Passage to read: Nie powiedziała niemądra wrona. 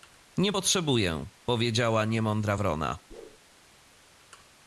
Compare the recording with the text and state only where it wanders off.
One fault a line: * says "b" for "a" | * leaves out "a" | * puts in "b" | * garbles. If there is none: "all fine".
* puts in "potrzebuję"